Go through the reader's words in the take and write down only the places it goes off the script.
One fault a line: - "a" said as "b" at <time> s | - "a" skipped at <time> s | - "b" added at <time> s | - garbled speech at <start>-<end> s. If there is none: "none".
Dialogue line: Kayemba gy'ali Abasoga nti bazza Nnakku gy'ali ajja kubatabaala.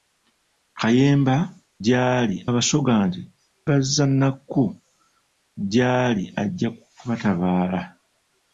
none